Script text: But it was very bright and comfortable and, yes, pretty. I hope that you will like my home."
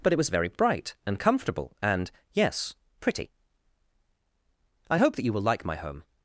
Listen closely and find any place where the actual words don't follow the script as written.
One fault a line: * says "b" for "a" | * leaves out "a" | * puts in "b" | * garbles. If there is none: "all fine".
all fine